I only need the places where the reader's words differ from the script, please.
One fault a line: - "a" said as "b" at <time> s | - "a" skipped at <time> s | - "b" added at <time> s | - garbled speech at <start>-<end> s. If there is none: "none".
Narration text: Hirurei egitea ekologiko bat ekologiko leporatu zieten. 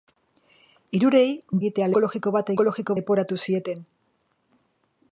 none